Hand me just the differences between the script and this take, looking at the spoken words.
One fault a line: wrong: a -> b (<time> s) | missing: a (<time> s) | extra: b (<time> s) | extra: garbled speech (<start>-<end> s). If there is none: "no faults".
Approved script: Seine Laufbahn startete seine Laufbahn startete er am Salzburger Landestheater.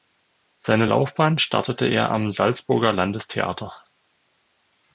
missing: seine Laufbahn startete (1.8 s)